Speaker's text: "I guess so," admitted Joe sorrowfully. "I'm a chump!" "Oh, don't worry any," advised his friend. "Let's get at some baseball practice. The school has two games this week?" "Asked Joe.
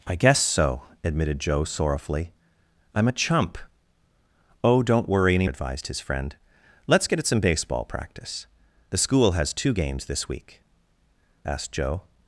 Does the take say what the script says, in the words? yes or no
yes